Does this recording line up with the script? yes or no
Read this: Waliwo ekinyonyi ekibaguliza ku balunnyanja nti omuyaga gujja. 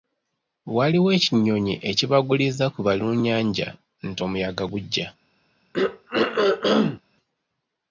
yes